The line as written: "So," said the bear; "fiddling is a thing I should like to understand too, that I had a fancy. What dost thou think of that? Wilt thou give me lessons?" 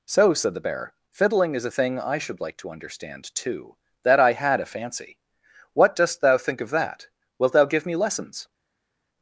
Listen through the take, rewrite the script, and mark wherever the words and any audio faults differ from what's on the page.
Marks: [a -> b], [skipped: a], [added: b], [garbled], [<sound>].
"So," said the bear; "fiddling is a thing I should like to understand too, that I had a fancy. What dost thou think of that? Wilt thou give me lessons?"